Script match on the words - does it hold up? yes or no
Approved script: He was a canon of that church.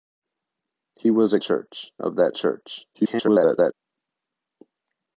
no